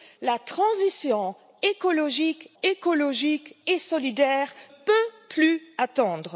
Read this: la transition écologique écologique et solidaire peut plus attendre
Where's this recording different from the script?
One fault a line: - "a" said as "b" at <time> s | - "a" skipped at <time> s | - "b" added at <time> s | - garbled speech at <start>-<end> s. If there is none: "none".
none